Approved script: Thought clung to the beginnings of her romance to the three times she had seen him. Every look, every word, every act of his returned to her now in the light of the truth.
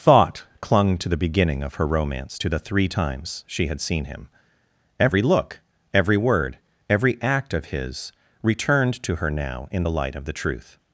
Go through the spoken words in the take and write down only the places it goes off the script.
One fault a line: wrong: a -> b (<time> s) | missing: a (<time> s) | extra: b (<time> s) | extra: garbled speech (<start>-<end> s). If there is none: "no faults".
wrong: beginnings -> beginning (1.1 s)